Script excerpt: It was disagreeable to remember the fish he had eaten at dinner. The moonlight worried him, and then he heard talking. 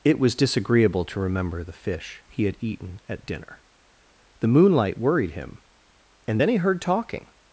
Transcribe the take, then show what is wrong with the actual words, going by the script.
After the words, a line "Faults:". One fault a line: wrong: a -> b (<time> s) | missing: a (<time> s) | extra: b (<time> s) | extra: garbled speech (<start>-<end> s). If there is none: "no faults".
It was disagreeable to remember the fish he had eaten at dinner. The moonlight worried him, and then he heard talking.
Faults:
no faults